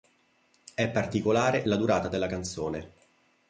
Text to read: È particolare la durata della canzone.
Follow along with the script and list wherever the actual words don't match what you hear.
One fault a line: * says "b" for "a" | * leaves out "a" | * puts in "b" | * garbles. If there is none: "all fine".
all fine